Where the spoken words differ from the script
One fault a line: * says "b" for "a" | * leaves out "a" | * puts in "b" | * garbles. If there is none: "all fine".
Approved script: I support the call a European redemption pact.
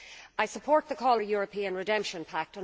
all fine